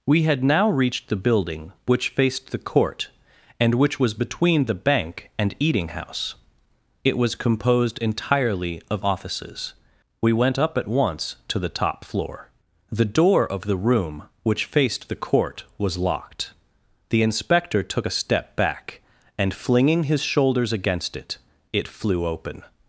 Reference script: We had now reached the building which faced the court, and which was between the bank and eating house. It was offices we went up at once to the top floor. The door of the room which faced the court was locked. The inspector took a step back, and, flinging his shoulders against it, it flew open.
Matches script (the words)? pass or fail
fail